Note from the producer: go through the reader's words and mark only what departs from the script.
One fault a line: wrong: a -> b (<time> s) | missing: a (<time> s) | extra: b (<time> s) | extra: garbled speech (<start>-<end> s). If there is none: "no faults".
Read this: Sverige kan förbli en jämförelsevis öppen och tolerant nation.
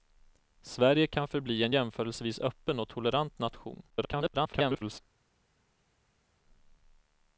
extra: garbled speech (3.9-5.0 s)